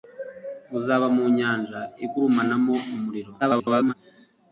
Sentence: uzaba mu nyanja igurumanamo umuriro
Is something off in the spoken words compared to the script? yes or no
yes